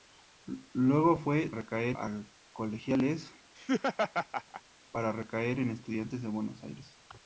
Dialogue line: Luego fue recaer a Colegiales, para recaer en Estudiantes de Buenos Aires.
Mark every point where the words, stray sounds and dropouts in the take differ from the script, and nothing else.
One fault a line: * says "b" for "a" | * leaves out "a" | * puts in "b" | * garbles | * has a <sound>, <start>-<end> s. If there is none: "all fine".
* has a laugh, 3.6-4.6 s